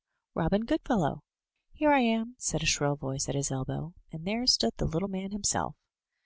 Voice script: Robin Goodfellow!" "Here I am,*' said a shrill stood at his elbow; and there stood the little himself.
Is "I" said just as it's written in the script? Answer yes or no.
yes